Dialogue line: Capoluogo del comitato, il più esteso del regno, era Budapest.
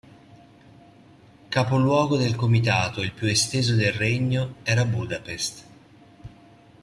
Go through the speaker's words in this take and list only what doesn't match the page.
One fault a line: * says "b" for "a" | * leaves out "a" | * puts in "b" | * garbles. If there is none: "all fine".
all fine